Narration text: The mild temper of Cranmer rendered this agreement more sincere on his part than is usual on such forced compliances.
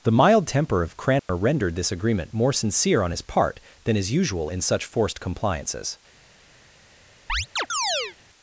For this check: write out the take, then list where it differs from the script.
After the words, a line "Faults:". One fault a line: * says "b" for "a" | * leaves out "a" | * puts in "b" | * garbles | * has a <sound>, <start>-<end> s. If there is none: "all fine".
The mild temper of Cranmer rendered this agreement more sincere on his part than is usual in such forced compliances.
Faults:
* has a dropout, 1.2-1.3 s
* says "in" for "on"
* has a chirp, 7.3-8.2 s